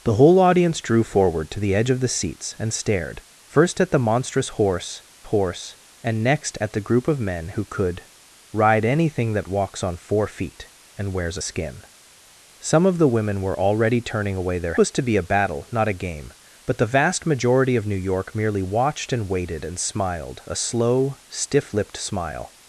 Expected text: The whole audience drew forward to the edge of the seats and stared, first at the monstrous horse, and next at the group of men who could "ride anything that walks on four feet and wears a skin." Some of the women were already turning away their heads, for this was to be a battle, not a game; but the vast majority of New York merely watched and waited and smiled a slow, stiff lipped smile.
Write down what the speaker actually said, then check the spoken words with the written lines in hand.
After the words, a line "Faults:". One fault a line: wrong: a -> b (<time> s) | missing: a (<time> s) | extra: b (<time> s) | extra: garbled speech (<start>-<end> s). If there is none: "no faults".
The whole audience drew forward to the edge of the seats and stared, first at the monstrous horse horse, and next at the group of men who could "ride anything that walks on four feet and wears a skin." Some of the women were already turning away their was to be a battle, not a game; but the vast majority of New York merely watched and waited and smiled a slow, stiff lipped smile.
Faults:
extra: horse (5.2 s)
missing: heads for this (14.8 s)